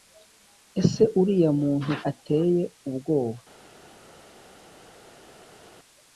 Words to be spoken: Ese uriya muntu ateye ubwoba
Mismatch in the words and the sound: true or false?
false